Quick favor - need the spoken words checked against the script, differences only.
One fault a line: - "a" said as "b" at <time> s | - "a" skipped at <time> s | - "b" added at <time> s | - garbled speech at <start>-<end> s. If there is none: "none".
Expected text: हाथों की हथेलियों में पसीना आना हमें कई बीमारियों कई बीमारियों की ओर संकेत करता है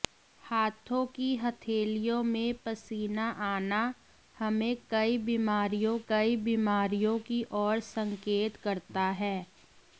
none